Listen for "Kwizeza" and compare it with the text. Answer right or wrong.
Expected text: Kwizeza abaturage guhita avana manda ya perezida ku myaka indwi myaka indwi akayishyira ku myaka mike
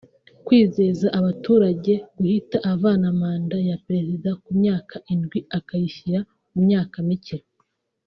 right